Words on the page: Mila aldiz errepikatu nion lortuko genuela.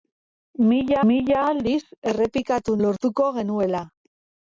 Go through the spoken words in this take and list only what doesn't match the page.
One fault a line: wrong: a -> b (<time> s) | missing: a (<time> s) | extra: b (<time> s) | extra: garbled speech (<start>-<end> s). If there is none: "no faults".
extra: mila (1.1 s)
missing: nion (2.8 s)